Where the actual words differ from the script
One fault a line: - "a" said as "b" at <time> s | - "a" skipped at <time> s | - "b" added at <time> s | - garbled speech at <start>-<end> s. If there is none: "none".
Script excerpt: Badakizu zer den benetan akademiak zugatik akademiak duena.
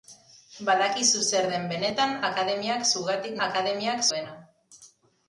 none